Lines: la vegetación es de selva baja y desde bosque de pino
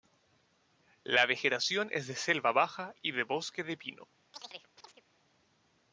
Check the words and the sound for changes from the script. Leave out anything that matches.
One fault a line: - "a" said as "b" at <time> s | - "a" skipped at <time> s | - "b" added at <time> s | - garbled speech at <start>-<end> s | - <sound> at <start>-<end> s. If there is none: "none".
- "desde" said as "de" at 3.1 s
- chirp at 4.3-5.0 s